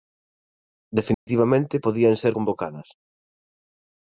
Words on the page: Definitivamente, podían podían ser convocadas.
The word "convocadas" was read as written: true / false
true